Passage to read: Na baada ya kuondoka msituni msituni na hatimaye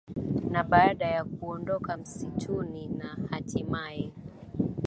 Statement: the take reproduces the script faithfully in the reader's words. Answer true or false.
false